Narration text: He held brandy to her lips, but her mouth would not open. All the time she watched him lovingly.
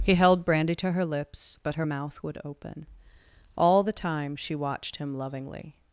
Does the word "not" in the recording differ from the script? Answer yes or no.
yes